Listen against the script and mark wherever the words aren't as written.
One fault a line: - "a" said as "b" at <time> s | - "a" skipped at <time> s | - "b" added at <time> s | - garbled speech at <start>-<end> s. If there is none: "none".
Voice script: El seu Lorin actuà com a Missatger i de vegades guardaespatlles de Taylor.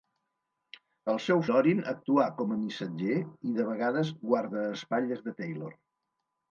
none